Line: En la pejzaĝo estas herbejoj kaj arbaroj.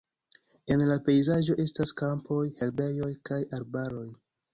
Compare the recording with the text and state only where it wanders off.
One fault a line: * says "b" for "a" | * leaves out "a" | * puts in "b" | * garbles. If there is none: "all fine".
* puts in "kampoj"